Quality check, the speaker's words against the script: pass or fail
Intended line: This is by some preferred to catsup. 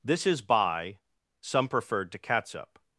pass